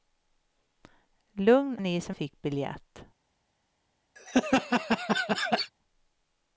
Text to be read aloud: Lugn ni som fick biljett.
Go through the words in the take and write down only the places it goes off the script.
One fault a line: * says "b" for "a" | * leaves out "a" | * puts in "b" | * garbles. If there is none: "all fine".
all fine